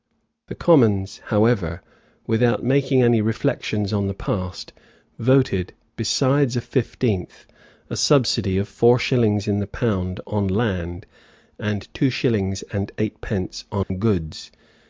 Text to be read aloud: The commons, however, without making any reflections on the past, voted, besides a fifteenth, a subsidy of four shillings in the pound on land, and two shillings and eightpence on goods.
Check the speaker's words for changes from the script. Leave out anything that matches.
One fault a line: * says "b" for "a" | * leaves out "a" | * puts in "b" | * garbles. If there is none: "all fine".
all fine